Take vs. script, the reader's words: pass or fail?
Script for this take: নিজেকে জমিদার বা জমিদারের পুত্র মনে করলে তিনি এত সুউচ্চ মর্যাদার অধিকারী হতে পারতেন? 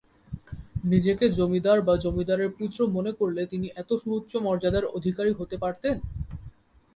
pass